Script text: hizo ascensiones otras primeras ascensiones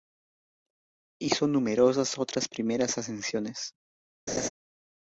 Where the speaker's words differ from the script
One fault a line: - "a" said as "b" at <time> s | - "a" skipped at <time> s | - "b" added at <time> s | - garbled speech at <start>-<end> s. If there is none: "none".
- "ascensiones" said as "numerosas" at 1.5 s